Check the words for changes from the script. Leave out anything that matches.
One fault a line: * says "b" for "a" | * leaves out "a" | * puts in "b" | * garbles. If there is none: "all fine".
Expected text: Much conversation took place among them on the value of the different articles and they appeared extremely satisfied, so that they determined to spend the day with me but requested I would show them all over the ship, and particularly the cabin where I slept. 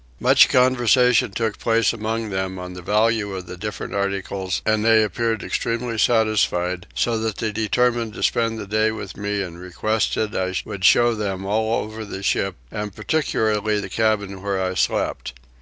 * says "and" for "but"